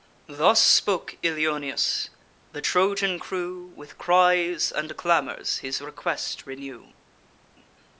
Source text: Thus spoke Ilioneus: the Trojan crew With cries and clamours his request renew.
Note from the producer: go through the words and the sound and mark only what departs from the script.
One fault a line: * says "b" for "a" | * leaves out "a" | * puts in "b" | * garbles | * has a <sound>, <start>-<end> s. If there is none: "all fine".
all fine